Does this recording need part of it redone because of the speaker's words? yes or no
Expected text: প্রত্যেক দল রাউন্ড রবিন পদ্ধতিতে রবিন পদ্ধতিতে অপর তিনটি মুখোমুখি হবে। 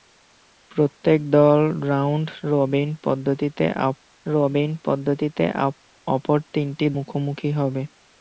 no